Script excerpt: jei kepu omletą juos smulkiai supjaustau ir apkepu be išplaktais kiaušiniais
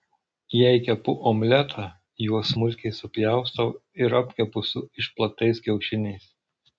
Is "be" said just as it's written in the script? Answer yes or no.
no